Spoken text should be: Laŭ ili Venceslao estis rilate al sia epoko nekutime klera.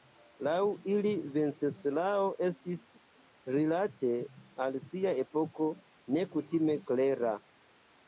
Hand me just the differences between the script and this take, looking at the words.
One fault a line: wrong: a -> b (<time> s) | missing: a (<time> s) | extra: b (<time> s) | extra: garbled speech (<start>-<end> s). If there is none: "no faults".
no faults